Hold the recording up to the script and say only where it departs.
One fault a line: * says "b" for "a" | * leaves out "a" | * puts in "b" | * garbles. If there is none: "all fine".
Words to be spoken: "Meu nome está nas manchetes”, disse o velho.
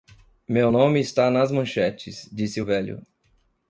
all fine